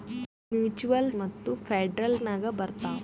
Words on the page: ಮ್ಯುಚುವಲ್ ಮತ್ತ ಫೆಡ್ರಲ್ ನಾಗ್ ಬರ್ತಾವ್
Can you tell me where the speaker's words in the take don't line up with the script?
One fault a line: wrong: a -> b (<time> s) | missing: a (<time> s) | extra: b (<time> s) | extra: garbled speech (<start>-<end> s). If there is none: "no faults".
no faults